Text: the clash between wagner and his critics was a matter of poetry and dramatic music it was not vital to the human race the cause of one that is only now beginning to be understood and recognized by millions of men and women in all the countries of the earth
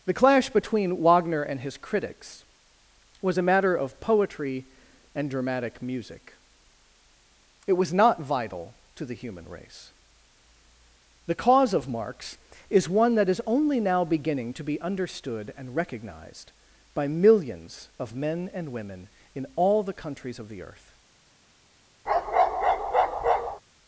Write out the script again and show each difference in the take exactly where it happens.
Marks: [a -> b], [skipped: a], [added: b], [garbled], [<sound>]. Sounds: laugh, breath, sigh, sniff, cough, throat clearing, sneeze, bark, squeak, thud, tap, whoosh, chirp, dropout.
the clash between wagner and his critics was a matter of poetry and dramatic music it was not vital to the human race the cause of [added: marx is] one that is only now beginning to be understood and recognized by millions of men and women in all the countries of the earth [bark]